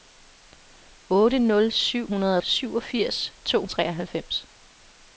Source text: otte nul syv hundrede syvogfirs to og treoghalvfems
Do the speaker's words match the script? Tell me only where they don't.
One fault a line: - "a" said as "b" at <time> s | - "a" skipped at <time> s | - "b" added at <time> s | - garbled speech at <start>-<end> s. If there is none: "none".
none